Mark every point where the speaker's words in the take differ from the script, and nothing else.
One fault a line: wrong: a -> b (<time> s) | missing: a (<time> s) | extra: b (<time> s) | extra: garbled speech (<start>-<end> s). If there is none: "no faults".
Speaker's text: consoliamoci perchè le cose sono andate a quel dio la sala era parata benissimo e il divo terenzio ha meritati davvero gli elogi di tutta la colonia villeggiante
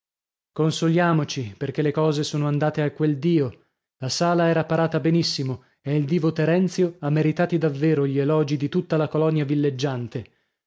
no faults